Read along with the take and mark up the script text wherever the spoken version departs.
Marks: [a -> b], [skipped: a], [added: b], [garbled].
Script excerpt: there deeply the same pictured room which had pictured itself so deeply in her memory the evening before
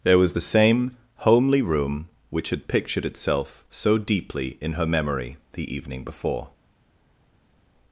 there [deeply -> was] the same [pictured -> homely] room which had pictured itself so deeply in her memory the evening before